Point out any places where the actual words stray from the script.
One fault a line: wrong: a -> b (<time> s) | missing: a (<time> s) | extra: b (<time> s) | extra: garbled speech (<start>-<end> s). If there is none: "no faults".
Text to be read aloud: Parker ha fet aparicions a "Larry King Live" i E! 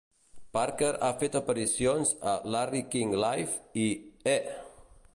no faults